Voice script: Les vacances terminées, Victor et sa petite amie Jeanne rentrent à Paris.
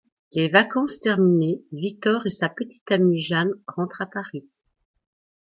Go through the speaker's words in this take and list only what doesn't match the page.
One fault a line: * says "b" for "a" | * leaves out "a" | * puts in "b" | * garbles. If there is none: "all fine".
all fine